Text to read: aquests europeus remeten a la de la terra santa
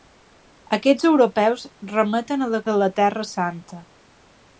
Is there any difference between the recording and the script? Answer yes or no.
no